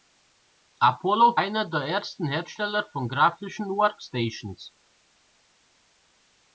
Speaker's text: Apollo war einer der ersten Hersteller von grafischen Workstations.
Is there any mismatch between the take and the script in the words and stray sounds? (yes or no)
yes